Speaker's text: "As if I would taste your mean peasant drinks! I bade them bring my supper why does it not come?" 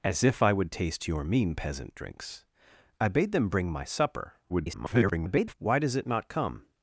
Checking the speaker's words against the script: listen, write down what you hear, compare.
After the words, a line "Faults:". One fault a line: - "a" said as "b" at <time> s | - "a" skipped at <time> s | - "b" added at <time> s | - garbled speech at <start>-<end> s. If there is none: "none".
"As if I would taste your mean peasant drinks! I bade them bring my supper [garbled] why does it not come?"
Faults:
- garbled speech at 4.5-5.5 s